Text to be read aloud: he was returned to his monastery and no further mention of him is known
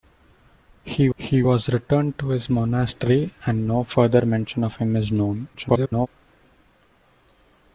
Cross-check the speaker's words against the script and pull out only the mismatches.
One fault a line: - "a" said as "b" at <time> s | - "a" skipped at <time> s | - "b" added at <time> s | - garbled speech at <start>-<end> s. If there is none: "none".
- "he" added at 1.2 s
- garbled speech at 5.5-6.1 s